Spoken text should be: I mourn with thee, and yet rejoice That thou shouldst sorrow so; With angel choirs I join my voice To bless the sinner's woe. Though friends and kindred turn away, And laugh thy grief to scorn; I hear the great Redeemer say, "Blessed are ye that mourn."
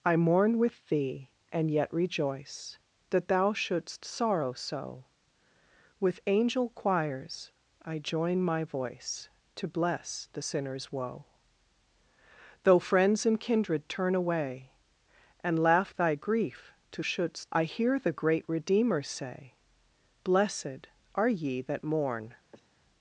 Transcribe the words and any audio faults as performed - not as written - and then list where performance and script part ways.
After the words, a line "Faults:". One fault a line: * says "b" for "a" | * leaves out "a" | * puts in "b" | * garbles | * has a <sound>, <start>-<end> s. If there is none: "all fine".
I mourn with thee, and yet rejoice That thou shouldst sorrow so; With angel choirs I join my voice To bless the sinner's woe. Though friends and kindred turn away, And laugh thy grief to shouldst; I hear the great Redeemer say, "Blessed are ye that mourn."
Faults:
* says "shouldst" for "scorn"
* has a sniff, 22.5-22.7 s